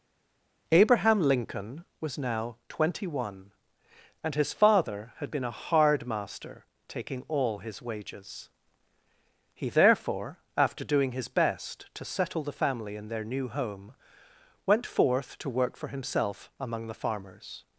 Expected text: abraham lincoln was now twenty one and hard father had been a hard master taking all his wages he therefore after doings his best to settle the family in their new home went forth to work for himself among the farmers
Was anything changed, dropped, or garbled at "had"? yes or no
no